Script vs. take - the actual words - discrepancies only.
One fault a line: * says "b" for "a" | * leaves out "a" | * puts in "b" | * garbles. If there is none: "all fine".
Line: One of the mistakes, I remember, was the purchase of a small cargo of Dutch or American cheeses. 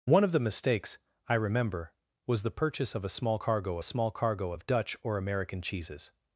* puts in "small cargo"